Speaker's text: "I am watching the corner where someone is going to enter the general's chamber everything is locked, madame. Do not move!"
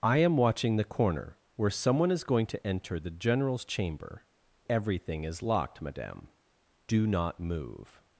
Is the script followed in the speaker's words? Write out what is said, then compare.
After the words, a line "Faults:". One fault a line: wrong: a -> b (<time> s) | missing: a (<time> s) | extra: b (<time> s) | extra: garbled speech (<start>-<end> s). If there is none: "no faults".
"I am watching the corner where someone is going to enter the general's chamber everything is locked, madame. Do not move!"
Faults:
no faults